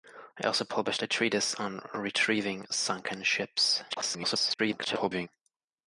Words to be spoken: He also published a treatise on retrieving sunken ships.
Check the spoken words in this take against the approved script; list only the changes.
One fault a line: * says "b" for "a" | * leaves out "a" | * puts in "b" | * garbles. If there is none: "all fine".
* garbles